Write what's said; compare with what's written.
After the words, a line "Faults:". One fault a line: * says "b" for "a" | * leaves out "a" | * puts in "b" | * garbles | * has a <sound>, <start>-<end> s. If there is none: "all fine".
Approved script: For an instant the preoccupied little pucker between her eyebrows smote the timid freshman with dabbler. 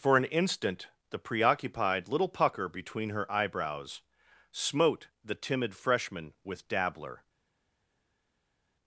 For an instant the preoccupied little pucker between her eyebrows smote the timid freshman with dabbler.
Faults:
all fine